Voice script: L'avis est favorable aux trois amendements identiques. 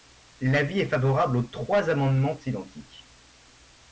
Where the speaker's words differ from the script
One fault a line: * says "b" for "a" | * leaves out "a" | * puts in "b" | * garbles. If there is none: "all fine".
all fine